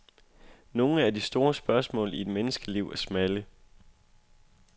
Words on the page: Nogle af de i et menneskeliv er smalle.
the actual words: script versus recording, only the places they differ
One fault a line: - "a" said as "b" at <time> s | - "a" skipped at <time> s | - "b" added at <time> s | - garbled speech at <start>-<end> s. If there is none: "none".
- "store spørgsmål" added at 1.2 s